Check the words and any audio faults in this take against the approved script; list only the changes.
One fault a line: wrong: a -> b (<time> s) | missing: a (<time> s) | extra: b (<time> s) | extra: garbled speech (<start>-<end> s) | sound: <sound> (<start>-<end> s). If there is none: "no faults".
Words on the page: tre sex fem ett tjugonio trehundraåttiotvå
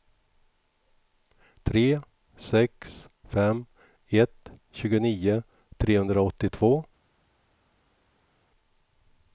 no faults